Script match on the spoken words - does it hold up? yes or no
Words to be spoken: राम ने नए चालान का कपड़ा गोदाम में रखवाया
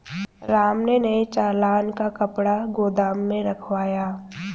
yes